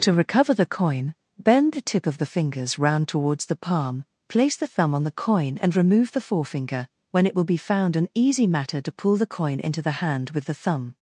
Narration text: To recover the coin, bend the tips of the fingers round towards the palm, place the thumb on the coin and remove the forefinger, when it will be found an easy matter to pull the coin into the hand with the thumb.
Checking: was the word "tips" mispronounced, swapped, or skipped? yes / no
yes